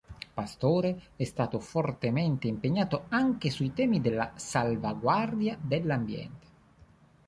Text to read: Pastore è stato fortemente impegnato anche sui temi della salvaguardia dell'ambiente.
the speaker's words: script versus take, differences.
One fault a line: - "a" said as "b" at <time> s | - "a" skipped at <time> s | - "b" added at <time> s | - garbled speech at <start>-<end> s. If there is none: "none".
none